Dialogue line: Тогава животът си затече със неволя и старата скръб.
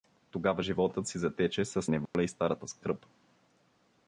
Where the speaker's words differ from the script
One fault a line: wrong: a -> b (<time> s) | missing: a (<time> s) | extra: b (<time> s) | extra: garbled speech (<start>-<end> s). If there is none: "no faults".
no faults